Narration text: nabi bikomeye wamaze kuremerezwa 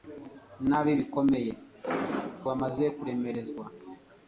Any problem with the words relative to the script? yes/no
no